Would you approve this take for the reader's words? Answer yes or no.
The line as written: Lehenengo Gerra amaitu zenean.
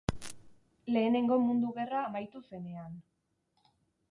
no